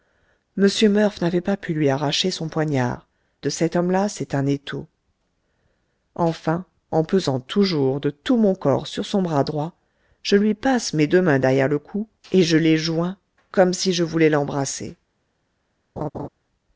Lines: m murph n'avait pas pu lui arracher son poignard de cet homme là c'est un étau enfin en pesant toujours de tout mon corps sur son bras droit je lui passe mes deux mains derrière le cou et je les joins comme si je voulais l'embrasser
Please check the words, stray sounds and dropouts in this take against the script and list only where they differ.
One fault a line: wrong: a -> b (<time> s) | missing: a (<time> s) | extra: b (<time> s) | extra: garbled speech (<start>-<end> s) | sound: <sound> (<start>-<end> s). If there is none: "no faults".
sound: laugh (16.0-16.3 s)